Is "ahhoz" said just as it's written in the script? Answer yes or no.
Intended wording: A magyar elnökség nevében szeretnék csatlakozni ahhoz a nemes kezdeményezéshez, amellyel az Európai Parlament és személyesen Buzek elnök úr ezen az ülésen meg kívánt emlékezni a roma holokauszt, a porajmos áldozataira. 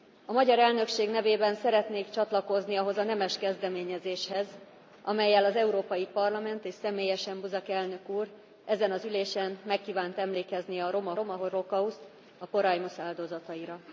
yes